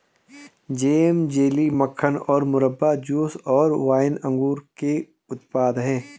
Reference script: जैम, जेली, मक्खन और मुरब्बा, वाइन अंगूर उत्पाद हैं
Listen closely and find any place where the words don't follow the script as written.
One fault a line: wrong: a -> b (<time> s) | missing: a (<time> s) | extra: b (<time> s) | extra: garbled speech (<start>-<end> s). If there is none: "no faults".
extra: जूस और (3.0 s)
extra: के (4.8 s)